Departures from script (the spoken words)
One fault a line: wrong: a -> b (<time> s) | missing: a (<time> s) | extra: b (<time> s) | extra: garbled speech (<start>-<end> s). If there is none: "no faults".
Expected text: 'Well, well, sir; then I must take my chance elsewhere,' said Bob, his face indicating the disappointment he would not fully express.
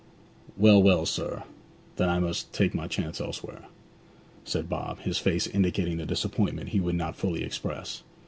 no faults